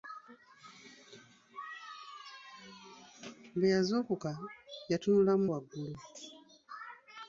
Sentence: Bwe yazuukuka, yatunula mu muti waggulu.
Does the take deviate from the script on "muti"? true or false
true